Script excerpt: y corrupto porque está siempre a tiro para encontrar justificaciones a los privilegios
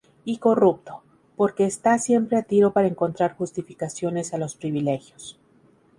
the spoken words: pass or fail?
pass